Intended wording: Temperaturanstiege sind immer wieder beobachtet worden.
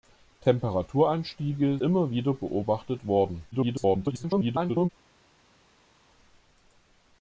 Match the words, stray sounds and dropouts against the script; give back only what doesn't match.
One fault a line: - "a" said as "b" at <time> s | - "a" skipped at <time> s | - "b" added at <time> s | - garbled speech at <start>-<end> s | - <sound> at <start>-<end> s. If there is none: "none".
- "sind" skipped at 1.8 s
- garbled speech at 3.5-4.9 s